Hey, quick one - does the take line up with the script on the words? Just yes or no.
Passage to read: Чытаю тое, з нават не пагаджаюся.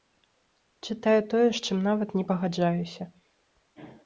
no